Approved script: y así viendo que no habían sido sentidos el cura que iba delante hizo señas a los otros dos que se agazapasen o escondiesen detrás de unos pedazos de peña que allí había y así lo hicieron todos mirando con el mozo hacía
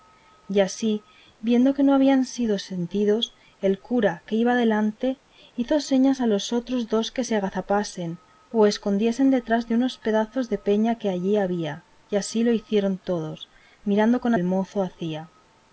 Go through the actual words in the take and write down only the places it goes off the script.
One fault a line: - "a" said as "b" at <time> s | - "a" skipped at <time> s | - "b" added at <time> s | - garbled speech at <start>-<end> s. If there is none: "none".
none